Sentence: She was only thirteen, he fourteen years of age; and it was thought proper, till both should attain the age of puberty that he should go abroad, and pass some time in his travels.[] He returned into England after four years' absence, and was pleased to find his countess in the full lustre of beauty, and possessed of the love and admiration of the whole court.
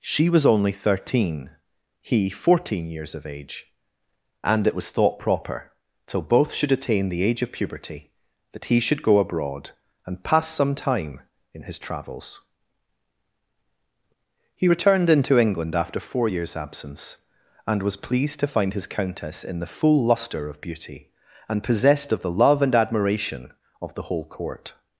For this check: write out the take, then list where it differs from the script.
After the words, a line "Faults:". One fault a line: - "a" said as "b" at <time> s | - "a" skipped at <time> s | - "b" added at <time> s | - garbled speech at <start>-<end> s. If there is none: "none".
She was only thirteen, he fourteen years of age; and it was thought proper, till both should attain the age of puberty that he should go abroad, and pass some time in his travels.[] He returned into England after four years' absence, and was pleased to find his countess in the full lustre of beauty, and possessed of the love and admiration of the whole court.
Faults:
none